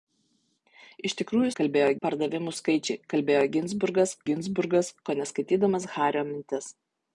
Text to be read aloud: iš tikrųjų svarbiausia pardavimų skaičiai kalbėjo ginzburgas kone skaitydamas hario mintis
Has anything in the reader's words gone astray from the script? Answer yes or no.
yes